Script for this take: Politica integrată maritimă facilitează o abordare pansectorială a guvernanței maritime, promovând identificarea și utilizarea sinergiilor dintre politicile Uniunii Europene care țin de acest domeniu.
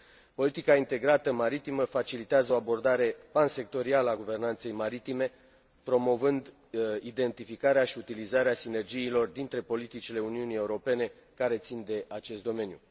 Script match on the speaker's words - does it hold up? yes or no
yes